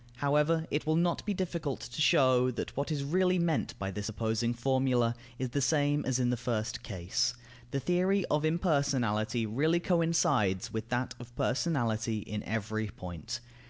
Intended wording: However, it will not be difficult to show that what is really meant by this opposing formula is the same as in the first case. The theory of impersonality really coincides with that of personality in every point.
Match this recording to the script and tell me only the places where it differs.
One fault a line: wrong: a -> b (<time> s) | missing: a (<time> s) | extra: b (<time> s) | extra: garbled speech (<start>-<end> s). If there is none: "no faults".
no faults